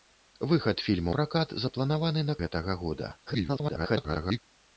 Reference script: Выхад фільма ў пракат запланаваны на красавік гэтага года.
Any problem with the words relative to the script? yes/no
yes